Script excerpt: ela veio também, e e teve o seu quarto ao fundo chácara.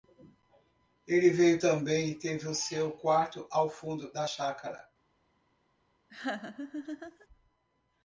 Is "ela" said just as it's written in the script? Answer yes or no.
no